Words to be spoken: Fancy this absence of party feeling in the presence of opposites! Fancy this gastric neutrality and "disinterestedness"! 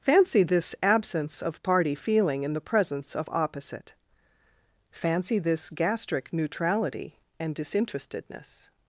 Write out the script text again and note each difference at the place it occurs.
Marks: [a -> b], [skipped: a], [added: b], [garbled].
Fancy this absence of party feeling in the presence of [opposites! -> opposite] Fancy this gastric neutrality and "disinterestedness"!